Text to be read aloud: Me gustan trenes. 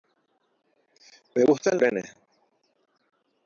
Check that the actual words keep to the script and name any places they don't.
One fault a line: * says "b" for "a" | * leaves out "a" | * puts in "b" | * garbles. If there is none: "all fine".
all fine